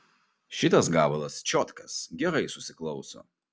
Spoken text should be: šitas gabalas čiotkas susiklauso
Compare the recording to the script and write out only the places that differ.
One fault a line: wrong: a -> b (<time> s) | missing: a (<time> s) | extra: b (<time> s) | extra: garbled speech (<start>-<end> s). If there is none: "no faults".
extra: gerai (2.1 s)